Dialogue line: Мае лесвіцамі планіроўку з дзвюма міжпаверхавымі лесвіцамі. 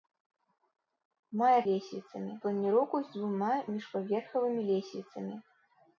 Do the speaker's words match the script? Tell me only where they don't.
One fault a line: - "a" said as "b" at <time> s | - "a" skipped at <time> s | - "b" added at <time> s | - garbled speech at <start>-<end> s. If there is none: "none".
none